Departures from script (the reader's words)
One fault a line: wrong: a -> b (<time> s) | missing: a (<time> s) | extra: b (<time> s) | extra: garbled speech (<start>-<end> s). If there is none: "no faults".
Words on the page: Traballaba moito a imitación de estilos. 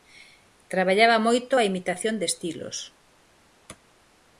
no faults